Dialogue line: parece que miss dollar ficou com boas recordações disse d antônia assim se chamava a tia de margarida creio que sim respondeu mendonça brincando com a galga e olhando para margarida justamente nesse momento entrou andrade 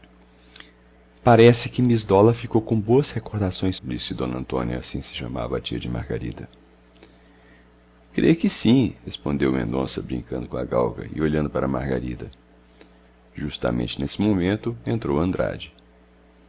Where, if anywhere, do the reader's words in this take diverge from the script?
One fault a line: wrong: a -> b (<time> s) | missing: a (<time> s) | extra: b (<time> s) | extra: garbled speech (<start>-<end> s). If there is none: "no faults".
no faults